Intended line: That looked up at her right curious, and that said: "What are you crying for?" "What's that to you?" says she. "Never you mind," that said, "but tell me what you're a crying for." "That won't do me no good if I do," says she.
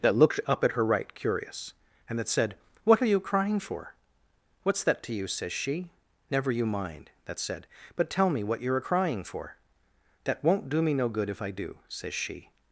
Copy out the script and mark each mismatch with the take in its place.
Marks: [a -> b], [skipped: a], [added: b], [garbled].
That looked up at her right curious, and that said: "What are you crying for?" "What's that to you?" says she. "Never you mind," that said, "but tell me what you're a crying for." "That won't do me no good if I do," says she.